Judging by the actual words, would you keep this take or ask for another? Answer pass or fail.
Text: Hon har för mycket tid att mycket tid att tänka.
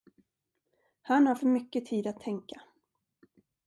fail